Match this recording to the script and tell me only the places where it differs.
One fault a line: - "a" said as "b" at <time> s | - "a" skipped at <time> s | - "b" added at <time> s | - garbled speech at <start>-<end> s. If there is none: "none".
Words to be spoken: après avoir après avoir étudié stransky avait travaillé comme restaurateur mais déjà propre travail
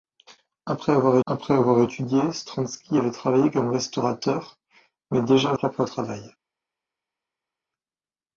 none